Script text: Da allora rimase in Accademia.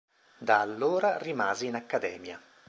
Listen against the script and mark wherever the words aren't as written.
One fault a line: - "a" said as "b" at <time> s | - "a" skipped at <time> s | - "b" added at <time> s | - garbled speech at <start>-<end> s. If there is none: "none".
none